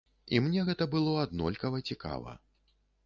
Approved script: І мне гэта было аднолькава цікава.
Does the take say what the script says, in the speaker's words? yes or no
yes